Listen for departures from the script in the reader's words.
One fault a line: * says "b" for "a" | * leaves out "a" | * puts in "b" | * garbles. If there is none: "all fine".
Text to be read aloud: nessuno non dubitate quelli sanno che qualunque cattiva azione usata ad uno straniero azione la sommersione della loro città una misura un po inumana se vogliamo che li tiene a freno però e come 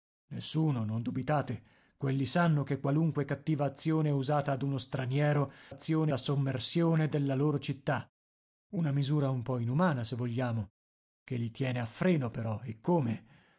all fine